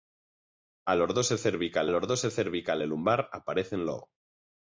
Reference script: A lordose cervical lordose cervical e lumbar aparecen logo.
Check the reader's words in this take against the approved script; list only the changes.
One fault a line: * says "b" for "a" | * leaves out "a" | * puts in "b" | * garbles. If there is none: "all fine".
all fine